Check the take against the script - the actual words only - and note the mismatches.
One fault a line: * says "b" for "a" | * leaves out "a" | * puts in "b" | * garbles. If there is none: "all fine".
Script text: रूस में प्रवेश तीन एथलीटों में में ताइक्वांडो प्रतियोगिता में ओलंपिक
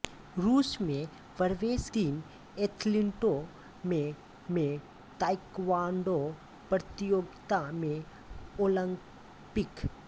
all fine